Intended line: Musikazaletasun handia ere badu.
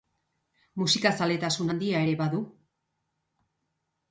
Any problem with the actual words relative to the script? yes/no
no